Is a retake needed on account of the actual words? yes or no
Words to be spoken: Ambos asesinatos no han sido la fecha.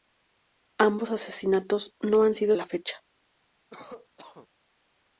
no